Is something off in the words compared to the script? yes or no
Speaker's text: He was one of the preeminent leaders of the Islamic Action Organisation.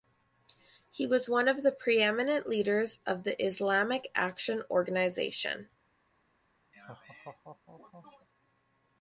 no